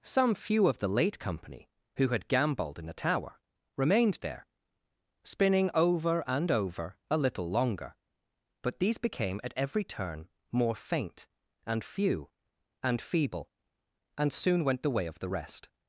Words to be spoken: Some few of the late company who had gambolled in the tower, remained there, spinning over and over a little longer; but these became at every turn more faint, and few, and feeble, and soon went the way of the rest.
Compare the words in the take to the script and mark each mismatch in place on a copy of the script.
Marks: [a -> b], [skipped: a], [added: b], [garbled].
Some few of the late company who had gambolled in the tower, remained there, spinning over and over a little longer; but these became at every turn more faint, and few, and feeble, and soon went the way of the rest.